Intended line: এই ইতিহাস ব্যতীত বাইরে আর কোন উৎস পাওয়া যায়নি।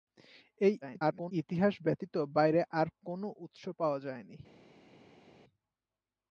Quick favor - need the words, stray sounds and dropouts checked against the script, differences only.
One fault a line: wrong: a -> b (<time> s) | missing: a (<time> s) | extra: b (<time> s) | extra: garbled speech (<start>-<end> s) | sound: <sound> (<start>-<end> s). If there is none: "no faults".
extra: garbled speech (0.8-1.3 s)